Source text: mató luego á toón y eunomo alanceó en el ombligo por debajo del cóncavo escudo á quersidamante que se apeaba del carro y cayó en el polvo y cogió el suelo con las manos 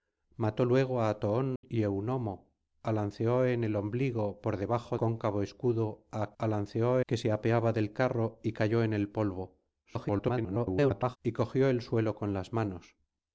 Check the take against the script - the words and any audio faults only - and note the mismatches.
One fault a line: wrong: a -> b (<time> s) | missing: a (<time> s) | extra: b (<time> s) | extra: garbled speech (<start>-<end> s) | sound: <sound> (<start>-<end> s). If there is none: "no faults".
sound: dropout (1.6-1.6 s)
missing: del (5.0 s)
wrong: quersidamante -> alanceó (6.4 s)
extra: garbled speech (9.8-11.2 s)